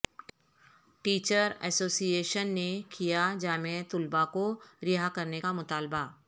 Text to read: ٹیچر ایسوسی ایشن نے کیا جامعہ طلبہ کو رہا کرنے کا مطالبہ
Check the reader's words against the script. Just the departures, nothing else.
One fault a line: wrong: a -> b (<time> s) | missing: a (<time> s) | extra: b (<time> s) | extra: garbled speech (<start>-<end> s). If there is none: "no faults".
no faults